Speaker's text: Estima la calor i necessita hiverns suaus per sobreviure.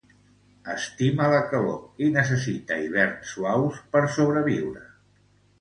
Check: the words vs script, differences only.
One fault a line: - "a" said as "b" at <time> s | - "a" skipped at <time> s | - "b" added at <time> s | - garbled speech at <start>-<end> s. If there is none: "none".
none